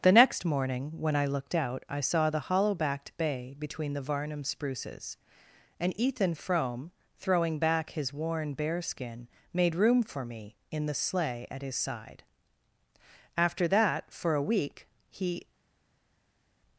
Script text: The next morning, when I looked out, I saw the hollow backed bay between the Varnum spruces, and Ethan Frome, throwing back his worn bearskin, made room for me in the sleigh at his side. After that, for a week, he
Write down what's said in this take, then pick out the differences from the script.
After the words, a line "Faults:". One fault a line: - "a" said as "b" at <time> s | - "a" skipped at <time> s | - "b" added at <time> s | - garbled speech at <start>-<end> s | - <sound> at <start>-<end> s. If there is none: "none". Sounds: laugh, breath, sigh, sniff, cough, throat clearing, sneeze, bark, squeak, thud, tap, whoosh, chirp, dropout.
The next morning, when I looked out, I saw the hollow backed bay between the Varnum spruces, and Ethan Frome, throwing back his worn bearskin, made room for me in the sleigh at his side. After that, for a week, he
Faults:
none